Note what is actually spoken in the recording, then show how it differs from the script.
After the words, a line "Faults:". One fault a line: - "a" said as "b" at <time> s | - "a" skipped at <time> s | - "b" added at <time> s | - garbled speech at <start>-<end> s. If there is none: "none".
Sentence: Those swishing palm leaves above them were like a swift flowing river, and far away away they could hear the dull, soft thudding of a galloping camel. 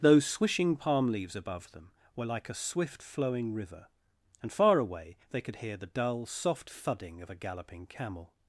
Those swishing palm leaves above them were like a swift flowing river, and far away they could hear the dull, soft thudding of a galloping camel.
Faults:
- "away" skipped at 5.2 s